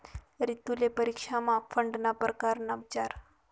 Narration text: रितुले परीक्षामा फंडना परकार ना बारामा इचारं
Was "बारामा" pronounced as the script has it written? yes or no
no